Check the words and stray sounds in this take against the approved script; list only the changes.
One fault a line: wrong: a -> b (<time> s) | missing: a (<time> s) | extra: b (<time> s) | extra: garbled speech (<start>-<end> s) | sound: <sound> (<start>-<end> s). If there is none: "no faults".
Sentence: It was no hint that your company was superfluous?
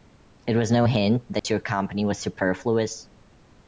sound: dropout (1.4-1.4 s)